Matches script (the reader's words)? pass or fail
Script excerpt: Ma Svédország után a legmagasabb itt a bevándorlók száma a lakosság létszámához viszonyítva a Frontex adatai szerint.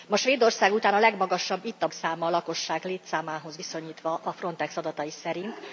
fail